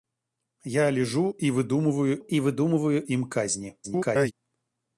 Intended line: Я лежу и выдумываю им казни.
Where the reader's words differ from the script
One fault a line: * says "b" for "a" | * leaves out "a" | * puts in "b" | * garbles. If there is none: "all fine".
* puts in "и выдумываю"
* garbles